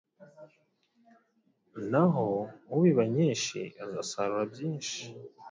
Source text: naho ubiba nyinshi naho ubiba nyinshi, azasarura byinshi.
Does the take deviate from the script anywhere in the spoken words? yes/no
yes